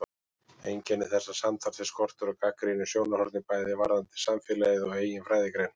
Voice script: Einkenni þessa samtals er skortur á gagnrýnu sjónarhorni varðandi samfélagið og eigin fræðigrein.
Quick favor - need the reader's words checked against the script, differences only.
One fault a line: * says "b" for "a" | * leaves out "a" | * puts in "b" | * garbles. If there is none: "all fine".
* puts in "bæði"